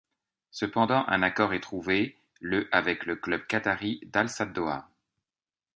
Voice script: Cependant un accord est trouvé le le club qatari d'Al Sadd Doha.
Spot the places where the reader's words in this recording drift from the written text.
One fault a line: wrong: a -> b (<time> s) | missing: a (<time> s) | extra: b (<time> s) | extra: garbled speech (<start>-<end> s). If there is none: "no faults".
extra: avec (2.7 s)